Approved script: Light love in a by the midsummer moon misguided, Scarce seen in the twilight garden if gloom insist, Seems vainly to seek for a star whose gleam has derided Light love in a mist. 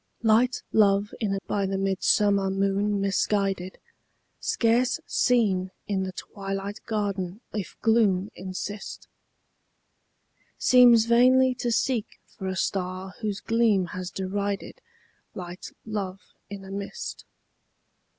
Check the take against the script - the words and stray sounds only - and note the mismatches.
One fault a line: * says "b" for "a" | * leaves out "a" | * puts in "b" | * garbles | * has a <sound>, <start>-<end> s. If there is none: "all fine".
all fine